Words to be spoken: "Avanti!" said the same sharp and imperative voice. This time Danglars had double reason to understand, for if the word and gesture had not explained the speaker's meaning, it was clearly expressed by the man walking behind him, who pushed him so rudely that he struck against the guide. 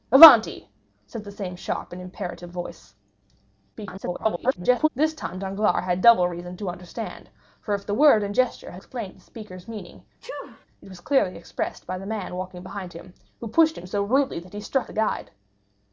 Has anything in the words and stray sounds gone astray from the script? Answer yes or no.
yes